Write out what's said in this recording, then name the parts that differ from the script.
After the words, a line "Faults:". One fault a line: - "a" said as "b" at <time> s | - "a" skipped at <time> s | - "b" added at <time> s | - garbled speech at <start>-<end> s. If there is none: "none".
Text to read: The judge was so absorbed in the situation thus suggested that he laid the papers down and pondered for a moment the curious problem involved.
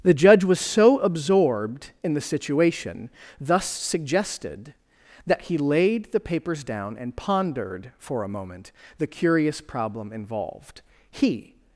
The judge was so absorbed in the situation thus suggested that he laid the papers down and pondered for a moment the curious problem involved. He
Faults:
- "He" added at 11.1 s